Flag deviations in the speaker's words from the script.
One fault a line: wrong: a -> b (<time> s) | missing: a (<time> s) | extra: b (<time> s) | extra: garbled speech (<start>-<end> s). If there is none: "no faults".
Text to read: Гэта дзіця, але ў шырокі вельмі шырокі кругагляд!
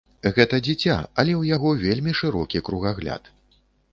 wrong: шырокі -> яго (1.5 s)